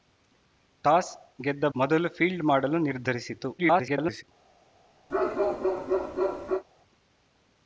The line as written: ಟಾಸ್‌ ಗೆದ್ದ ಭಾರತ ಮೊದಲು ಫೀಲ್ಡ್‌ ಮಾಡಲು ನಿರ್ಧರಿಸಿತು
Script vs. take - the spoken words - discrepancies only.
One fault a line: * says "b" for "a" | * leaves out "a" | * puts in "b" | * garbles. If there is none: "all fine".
* leaves out "ಭಾರತ"
* garbles